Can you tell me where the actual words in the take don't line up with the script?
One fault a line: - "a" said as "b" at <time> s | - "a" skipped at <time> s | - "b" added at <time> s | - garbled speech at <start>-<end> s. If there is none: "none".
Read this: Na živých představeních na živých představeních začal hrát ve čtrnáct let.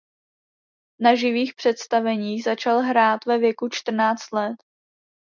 - "na živých představeních" skipped at 2.4 s
- "věku" added at 3.4 s